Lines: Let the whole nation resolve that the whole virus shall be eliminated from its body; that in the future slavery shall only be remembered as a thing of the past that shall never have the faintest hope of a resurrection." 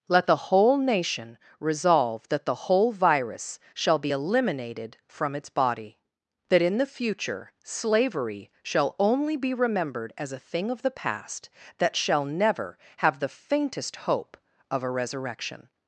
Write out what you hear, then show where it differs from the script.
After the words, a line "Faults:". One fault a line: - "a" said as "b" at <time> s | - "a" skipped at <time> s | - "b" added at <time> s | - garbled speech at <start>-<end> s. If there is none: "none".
Let the whole nation resolve that the whole virus shall be eliminated from its body; that in the future slavery shall only be remembered as a thing of the past that shall never have the faintest hope of a resurrection."
Faults:
none